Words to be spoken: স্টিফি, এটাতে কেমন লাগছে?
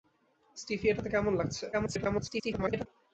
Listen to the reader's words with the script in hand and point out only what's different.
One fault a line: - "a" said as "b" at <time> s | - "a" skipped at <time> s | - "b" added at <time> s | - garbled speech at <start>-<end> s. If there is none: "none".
- garbled speech at 1.7-2.9 s